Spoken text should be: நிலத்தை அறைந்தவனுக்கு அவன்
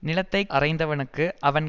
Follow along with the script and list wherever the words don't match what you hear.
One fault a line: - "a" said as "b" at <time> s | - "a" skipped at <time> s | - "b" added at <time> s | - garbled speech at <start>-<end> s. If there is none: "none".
none